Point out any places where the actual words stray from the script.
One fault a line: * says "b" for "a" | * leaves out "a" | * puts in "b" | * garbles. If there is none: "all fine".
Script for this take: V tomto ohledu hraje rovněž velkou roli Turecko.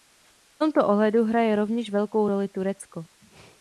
all fine